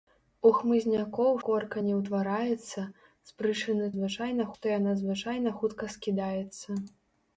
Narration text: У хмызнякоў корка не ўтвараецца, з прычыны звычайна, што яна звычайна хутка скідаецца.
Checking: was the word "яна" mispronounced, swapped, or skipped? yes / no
no